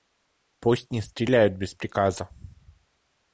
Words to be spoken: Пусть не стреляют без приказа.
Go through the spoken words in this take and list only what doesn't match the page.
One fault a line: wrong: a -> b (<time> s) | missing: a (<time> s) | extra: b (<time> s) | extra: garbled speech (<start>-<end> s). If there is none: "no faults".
no faults